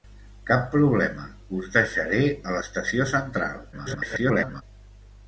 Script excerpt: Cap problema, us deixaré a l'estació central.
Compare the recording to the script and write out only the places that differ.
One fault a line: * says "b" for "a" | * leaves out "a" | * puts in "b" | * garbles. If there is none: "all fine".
* garbles